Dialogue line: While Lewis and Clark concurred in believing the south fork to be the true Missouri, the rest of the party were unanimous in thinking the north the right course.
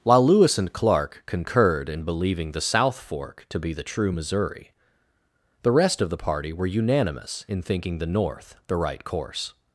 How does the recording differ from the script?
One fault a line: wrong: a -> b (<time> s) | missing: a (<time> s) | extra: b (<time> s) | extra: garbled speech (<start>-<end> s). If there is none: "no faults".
no faults